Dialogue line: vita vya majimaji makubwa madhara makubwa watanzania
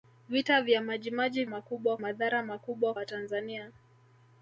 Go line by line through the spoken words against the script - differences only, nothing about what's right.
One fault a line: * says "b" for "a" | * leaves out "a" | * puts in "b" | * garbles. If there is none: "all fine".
all fine